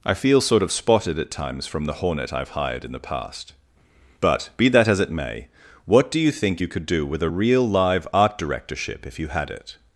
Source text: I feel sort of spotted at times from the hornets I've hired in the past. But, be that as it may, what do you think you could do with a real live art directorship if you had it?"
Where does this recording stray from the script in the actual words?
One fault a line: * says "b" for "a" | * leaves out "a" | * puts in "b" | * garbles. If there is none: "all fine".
* says "hornet" for "hornets"